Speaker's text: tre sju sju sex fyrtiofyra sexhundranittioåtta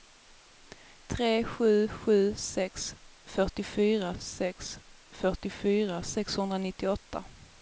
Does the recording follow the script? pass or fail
fail